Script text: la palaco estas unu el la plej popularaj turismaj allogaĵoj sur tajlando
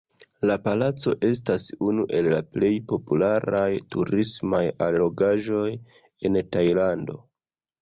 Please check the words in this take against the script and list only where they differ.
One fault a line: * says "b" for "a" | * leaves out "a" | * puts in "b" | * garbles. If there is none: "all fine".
* says "en" for "sur"